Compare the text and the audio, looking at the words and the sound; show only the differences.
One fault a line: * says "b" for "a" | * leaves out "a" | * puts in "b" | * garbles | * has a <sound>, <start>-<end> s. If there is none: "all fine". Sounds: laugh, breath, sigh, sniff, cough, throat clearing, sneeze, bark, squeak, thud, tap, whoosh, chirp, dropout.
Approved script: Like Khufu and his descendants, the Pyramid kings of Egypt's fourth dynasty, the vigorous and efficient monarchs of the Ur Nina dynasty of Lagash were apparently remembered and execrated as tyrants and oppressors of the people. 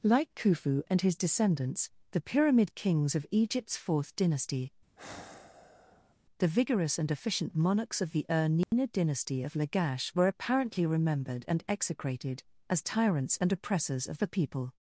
* has a sigh, 4.9-6.1 s
* has a dropout, 8.6-8.7 s